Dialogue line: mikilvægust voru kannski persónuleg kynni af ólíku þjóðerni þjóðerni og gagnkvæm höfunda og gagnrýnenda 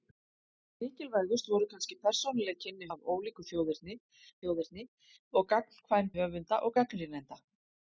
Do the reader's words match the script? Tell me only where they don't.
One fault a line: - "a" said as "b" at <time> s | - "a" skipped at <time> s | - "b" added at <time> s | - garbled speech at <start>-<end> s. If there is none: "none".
none